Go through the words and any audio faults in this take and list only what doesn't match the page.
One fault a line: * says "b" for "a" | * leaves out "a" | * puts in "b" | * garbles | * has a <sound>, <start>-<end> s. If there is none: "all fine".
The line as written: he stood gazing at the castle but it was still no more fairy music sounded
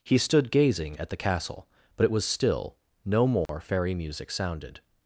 * has a dropout, 3.5-3.5 s